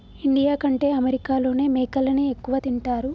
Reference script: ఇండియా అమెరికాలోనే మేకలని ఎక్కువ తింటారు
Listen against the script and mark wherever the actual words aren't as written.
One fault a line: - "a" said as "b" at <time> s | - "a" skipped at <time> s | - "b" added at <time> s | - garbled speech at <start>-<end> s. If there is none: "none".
- "కంటే" added at 0.6 s